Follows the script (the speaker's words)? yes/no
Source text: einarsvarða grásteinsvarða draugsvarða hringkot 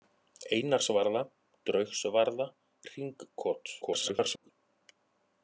no